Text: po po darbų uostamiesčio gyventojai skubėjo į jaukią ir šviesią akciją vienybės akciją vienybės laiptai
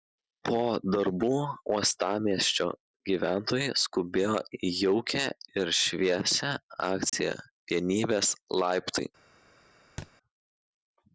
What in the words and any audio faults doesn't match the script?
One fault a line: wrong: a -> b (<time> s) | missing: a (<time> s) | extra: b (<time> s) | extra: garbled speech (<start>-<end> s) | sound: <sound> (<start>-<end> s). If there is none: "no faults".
missing: po (0.6 s)
sound: dropout (7.1-7.1 s)
missing: akciją vienybės (8.3 s)
sound: thud (10.0-10.1 s)